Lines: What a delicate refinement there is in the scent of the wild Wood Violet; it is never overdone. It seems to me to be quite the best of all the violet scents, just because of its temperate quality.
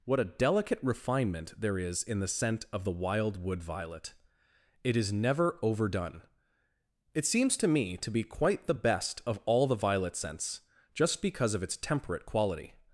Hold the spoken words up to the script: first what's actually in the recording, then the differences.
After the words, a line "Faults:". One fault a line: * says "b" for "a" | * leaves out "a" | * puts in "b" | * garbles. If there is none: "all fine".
What a delicate refinement there is in the scent of the wild Wood Violet; it is never overdone. It seems to me to be quite the best of all the violet scents, just because of its temperate quality.
Faults:
all fine